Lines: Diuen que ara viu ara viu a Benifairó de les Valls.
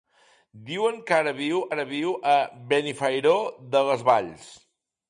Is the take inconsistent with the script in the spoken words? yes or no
no